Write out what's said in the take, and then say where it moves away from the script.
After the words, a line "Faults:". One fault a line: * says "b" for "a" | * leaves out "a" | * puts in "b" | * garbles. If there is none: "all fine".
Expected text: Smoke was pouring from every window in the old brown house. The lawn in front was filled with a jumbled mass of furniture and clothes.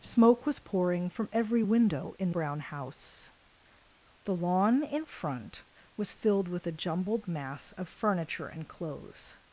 Smoke was pouring from every window in brown house. The lawn in front was filled with a jumbled mass of furniture and clothes.
Faults:
* leaves out "the old"